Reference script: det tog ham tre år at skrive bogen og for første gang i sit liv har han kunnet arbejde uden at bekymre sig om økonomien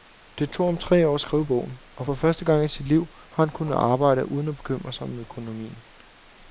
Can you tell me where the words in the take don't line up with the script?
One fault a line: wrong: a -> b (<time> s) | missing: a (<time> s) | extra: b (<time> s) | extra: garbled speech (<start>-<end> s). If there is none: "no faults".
no faults